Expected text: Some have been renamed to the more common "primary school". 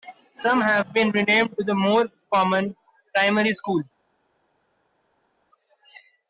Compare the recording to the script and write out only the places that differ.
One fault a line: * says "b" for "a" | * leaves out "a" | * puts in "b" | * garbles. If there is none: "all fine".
all fine